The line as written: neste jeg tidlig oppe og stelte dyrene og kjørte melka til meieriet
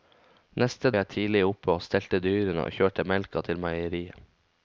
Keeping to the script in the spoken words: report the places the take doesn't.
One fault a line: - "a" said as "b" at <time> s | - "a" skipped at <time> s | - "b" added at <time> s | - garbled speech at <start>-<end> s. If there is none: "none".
none